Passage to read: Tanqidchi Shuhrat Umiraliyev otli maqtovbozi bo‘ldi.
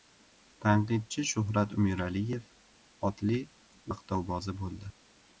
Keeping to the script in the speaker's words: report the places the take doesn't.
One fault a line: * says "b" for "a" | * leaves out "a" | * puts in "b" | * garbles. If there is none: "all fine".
all fine